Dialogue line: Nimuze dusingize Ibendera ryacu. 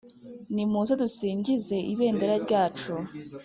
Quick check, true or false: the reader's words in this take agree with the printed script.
true